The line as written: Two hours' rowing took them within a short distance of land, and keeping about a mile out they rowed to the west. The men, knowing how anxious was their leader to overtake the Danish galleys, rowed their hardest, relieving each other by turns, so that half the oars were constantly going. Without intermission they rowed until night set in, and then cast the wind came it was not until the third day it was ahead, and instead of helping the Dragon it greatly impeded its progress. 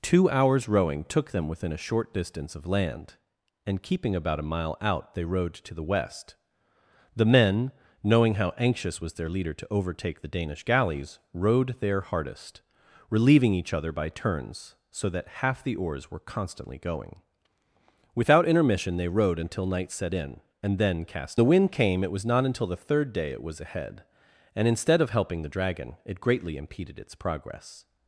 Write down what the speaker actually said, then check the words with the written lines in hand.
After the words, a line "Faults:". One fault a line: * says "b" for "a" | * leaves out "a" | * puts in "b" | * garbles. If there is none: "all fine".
Two hours' rowing took them within a short distance of land, and keeping about a mile out they rowed to the west. The men, knowing how anxious was their leader to overtake the Danish galleys, rowed their hardest, relieving each other by turns, so that half the oars were constantly going. Without intermission they rowed until night set in, and then cast the wind came it was not until the third day it was ahead, and instead of helping the Dragon it greatly impeded its progress.
Faults:
all fine